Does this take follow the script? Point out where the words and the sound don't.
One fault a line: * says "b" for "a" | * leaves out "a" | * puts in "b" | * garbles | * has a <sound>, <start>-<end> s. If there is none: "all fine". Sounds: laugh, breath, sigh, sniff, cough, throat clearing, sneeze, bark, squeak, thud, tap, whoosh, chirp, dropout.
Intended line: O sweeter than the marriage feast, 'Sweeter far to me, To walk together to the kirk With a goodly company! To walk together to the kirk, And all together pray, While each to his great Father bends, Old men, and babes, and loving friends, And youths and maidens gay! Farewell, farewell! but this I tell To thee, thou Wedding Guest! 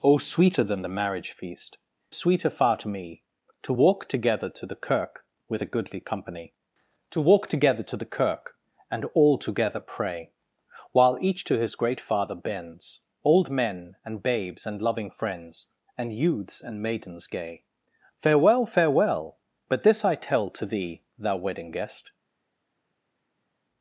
all fine